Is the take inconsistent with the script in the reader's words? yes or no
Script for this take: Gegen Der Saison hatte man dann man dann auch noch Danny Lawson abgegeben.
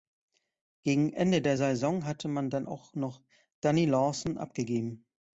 yes